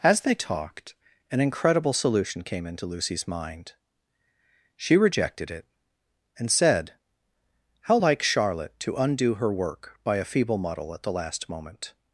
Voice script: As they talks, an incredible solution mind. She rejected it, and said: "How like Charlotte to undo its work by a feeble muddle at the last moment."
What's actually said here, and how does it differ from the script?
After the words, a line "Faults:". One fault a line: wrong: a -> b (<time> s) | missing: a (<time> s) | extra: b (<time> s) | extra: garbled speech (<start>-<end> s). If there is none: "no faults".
As they talked, an incredible solution came into Lucy's mind. She rejected it, and said: "How like Charlotte to undo her work by a feeble muddle at the last moment."
Faults:
wrong: talks -> talked (0.3 s)
extra: came into Lucy's (2.4 s)
wrong: its -> her (9.4 s)